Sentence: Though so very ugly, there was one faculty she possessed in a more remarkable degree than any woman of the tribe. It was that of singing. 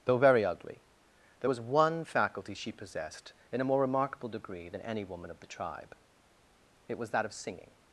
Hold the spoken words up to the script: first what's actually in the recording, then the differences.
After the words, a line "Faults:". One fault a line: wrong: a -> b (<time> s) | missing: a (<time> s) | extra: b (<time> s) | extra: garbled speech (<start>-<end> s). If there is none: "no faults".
Though very ugly, there was one faculty she possessed in a more remarkable degree than any woman of the tribe. It was that of singing.
Faults:
missing: so (0.2 s)